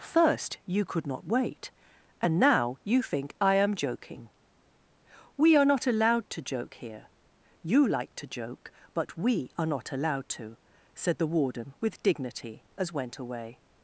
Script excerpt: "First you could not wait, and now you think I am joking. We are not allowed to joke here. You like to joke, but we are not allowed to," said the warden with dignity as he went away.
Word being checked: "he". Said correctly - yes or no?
no